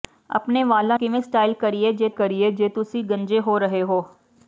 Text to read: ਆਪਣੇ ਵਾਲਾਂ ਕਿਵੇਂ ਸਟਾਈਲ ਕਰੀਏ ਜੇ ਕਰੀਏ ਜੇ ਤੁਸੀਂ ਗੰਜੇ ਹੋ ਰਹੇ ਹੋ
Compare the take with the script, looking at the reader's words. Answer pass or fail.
pass